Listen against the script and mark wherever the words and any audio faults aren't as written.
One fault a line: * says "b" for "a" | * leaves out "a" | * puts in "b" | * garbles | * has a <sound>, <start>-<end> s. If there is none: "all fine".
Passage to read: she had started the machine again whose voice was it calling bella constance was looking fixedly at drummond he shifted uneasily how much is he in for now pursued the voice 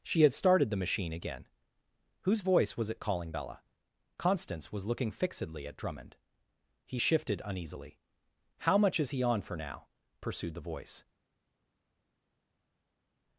* says "on" for "in"